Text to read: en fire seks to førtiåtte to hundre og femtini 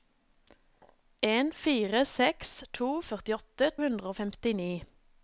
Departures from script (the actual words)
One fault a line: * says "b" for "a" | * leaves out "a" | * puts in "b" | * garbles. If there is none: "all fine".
* leaves out "to"